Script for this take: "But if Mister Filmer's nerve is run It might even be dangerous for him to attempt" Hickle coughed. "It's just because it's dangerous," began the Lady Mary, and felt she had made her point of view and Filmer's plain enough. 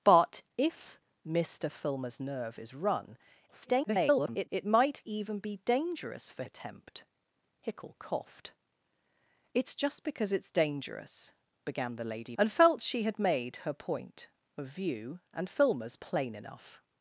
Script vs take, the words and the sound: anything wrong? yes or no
yes